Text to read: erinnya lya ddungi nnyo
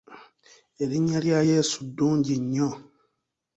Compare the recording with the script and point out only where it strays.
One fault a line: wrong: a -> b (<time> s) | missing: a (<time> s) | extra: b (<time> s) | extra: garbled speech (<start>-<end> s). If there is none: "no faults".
extra: yesu (1.5 s)